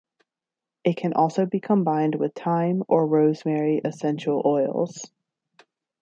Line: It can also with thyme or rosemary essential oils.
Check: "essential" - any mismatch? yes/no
no